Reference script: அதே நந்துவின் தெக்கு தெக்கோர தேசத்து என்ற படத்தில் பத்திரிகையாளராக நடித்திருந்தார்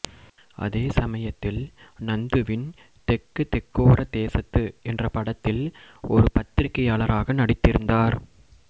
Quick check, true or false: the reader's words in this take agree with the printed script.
false